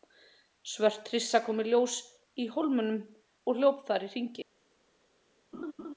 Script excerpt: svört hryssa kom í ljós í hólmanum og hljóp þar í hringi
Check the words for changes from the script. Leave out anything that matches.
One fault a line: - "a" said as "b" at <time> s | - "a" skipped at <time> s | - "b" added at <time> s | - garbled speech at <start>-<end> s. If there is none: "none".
none